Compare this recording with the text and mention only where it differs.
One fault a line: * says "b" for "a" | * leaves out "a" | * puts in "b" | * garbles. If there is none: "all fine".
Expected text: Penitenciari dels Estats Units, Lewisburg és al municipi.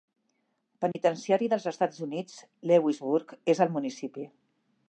all fine